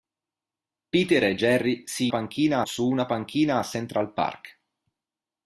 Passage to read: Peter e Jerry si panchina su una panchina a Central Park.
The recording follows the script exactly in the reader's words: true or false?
true